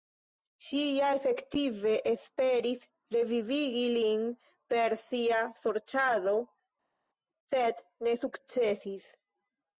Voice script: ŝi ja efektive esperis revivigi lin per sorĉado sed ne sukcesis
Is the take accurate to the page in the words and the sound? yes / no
no